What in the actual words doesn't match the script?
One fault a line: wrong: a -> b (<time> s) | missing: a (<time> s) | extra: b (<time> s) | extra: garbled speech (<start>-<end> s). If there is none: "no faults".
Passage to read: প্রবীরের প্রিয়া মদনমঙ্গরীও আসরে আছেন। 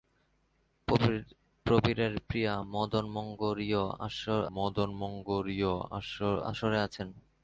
extra: মদনমঙ্গরীও (4.6 s)